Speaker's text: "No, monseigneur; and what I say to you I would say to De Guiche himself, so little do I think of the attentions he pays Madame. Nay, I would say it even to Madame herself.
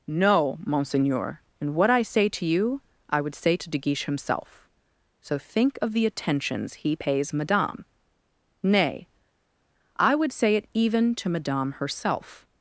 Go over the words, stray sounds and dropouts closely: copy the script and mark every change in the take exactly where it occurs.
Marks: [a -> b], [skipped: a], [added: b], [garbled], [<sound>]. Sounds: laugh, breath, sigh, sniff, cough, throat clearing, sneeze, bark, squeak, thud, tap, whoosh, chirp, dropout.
"No, monseigneur; and what I say to you I would say to De Guiche himself, so [skipped: little do I] think of the attentions he pays Madame. Nay, I would say it even to Madame herself.